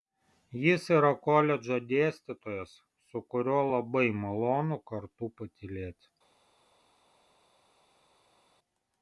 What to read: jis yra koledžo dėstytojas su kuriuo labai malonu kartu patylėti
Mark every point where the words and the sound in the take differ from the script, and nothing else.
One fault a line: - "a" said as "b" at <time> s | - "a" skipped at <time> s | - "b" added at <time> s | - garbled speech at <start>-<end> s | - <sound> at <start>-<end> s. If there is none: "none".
none